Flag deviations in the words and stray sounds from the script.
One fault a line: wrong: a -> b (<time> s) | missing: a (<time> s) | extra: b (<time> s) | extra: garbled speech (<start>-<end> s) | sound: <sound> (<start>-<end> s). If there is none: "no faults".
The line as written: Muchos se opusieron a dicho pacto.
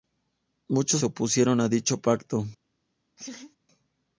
sound: laugh (3.2-3.6 s)